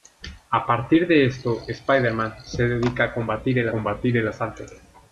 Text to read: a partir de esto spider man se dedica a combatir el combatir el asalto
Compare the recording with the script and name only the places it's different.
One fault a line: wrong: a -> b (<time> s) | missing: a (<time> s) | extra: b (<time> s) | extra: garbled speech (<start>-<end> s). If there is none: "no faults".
no faults